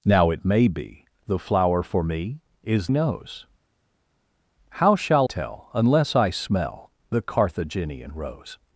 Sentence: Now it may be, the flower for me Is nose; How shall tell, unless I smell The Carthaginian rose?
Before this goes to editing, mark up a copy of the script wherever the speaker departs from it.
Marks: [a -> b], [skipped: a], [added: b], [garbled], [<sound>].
Now it may be, the flower for me Is nose; How shall tell, unless I smell The Carthaginian rose?